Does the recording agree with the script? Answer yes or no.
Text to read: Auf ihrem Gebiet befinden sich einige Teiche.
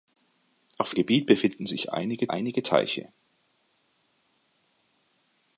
no